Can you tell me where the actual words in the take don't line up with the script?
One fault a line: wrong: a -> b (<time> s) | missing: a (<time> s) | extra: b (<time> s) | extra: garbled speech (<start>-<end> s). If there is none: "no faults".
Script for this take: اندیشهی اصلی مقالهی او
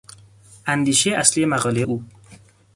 no faults